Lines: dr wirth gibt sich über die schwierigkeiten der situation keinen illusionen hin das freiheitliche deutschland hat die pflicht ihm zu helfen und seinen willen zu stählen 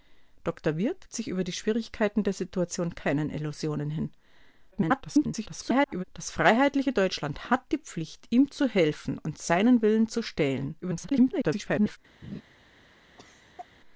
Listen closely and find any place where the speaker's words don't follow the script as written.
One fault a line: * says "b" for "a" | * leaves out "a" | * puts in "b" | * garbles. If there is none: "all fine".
* leaves out "gibt"
* garbles
* garbles